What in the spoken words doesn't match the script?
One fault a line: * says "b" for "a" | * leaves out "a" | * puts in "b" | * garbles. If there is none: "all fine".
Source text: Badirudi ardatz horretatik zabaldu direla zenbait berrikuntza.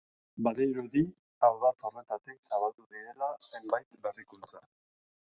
all fine